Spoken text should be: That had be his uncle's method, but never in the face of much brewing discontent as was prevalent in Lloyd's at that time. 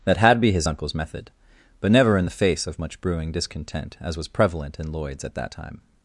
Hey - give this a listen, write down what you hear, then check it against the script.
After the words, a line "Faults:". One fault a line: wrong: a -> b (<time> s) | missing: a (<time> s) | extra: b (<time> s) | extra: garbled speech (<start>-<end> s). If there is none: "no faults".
That had be his uncle's method, but never in the face of much brewing discontent as was prevalent in Lloyd's at that time.
Faults:
no faults